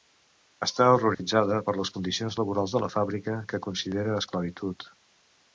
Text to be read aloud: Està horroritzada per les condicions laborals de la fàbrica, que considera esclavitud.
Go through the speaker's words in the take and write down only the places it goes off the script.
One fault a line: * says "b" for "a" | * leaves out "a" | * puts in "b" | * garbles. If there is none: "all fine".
all fine